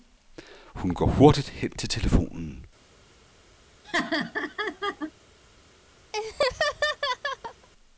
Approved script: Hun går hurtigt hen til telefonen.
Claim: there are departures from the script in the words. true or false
false